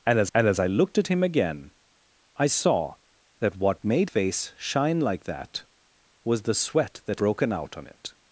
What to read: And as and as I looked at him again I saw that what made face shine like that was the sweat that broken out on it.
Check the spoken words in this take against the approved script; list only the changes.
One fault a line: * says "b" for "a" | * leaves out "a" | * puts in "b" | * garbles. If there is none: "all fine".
all fine